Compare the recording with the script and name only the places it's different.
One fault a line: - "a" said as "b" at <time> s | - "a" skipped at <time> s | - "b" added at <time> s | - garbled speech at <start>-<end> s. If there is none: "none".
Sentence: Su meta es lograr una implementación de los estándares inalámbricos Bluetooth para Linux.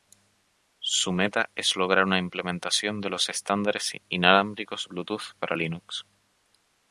none